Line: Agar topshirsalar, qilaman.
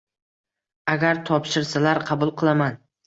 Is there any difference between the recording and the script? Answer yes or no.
yes